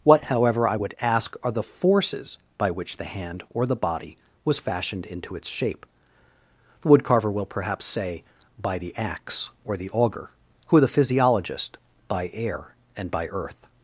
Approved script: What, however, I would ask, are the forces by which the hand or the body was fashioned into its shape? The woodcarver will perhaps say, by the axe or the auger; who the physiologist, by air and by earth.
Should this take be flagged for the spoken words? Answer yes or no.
no